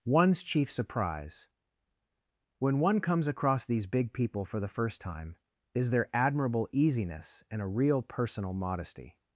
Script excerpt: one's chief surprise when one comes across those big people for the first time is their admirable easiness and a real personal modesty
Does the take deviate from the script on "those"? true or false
true